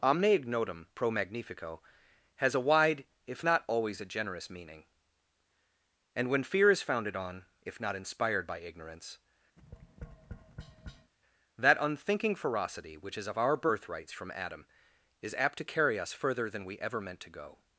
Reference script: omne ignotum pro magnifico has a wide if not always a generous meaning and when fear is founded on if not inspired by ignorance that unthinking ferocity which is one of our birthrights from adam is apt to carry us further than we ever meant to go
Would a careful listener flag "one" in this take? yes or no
yes